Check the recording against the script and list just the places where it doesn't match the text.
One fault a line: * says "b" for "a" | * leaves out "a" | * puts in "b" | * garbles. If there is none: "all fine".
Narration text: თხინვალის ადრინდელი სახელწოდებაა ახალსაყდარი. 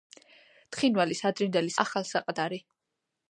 * leaves out "სახელწოდებაა"